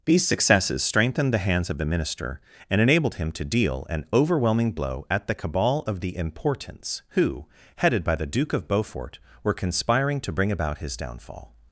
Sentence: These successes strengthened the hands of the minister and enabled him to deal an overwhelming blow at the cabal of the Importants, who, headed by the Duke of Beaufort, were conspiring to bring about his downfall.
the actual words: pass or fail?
pass